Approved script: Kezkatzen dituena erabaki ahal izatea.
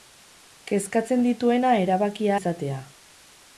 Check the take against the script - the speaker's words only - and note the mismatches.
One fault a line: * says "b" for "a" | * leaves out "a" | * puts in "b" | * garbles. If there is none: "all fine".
* leaves out "ahal"